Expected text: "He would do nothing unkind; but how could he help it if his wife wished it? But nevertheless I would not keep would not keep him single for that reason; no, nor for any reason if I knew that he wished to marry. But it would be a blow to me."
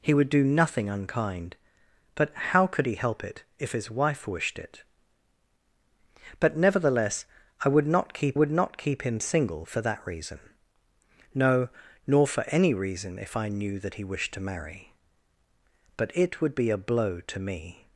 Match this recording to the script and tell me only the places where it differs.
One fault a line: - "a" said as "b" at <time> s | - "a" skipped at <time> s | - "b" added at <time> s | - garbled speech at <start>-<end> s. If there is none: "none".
none